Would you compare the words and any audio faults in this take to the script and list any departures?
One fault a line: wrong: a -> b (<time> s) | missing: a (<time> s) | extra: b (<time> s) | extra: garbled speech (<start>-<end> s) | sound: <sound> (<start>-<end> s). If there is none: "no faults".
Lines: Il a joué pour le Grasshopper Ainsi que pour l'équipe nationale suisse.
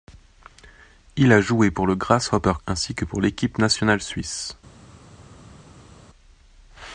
no faults